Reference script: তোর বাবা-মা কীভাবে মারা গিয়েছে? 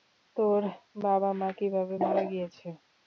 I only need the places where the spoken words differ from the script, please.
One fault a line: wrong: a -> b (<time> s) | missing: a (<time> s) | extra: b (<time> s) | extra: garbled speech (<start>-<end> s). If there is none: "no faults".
no faults